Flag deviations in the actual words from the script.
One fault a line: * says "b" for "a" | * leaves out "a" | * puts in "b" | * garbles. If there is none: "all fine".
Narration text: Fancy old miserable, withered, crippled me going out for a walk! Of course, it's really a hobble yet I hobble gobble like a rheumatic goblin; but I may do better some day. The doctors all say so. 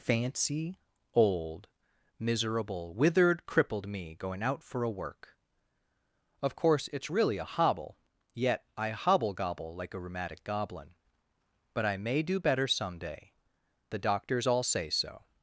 * says "work" for "walk"